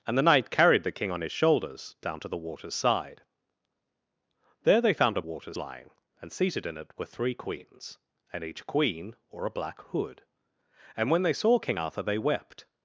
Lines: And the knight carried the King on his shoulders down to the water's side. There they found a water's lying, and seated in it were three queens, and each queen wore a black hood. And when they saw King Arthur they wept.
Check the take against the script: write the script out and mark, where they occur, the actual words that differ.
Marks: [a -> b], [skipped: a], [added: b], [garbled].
And the knight carried the King on his shoulders down to the water's side. There they found a water's lying, and seated in it were three queens, and each queen wore a black hood. And when they saw King Arthur they wept.